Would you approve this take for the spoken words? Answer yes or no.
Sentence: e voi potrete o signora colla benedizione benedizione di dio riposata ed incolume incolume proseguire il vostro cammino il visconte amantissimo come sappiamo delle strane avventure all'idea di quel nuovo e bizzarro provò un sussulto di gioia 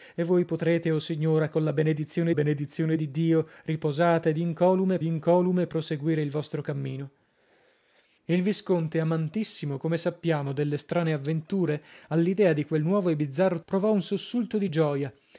yes